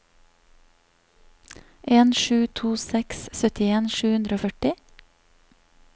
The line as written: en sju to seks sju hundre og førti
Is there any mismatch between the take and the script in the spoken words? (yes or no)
yes